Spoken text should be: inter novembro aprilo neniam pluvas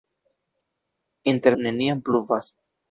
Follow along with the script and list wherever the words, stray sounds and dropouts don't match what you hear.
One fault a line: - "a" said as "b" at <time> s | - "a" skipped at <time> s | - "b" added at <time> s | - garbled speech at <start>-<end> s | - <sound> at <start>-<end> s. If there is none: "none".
- "novembro aprilo" skipped at 1.6 s